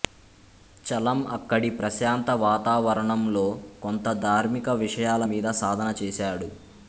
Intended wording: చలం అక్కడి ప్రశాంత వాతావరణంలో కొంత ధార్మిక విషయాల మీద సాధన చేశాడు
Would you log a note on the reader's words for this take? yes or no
no